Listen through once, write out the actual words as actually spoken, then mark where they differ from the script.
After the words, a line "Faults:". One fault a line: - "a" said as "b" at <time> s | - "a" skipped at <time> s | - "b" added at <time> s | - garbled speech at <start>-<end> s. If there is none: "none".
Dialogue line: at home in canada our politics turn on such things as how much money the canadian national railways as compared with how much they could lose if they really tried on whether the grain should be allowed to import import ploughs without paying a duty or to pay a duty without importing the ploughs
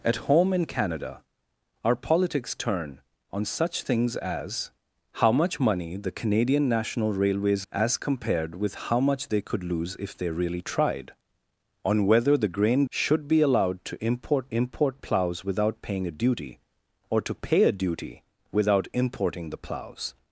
at home in canada our politics turn on such things as how much money the canadian national railways as compared with how much they could lose if they really tried on whether the grain should be allowed to import import ploughs without paying a duty or to pay a duty without importing the ploughs
Faults:
none